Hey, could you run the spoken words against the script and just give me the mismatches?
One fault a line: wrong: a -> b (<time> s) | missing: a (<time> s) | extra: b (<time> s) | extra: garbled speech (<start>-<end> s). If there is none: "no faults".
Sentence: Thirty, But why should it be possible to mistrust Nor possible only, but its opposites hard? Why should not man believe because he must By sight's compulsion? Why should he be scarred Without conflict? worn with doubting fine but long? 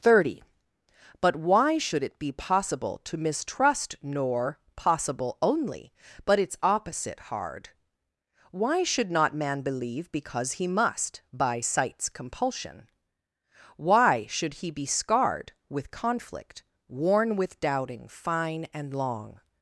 wrong: opposites -> opposite (6.6 s)
wrong: Without -> With (15.7 s)
wrong: but -> and (18.7 s)